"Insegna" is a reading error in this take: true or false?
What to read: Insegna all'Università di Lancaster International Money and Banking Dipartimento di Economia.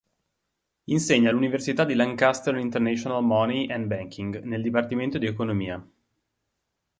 false